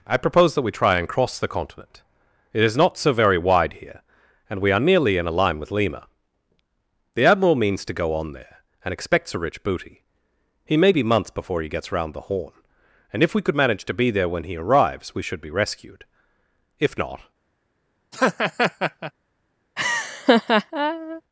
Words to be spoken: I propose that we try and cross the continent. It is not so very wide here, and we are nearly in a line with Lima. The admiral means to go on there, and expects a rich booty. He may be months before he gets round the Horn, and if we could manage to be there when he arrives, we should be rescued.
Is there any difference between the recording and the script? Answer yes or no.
yes